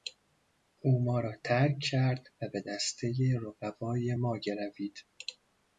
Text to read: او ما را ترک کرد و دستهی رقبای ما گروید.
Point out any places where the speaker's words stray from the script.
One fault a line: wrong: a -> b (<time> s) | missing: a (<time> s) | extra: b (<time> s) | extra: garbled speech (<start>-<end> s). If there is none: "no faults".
extra: به (2.5 s)